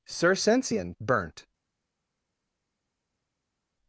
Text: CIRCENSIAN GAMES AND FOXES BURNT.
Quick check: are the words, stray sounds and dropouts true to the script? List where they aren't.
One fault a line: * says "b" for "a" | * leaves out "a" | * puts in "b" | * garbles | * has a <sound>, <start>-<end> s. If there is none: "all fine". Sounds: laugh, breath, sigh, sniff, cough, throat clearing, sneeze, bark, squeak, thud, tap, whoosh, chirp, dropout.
* leaves out "GAMES AND FOXES"